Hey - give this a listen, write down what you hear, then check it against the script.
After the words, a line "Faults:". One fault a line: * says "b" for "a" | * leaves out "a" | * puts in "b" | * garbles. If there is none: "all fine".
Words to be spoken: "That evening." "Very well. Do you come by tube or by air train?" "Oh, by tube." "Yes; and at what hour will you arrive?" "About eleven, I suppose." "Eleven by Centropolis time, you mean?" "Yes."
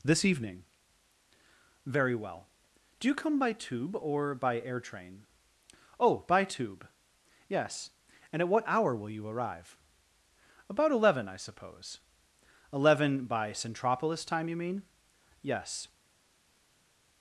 "This evening." "Very well. Do you come by tube or by air train?" "Oh, by tube." "Yes; and at what hour will you arrive?" "About eleven, I suppose." "Eleven by Centropolis time, you mean?" "Yes."
Faults:
* says "This" for "That"